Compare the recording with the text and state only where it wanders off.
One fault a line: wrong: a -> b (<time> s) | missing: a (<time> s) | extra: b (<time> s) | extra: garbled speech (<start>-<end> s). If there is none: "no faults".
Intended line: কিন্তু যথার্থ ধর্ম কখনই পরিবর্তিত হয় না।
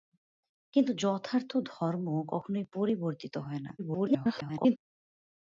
extra: garbled speech (3.8-4.8 s)